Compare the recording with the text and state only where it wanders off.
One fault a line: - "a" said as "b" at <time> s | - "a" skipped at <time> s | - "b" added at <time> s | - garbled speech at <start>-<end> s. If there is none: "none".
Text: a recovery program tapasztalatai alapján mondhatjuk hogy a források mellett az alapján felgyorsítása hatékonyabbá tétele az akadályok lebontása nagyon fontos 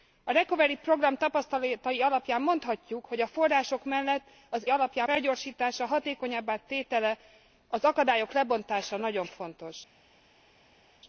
none